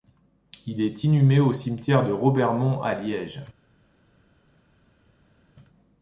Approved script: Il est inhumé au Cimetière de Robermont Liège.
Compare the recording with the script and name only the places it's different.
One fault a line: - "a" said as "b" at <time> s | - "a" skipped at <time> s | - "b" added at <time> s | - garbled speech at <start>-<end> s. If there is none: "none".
- "à" added at 2.8 s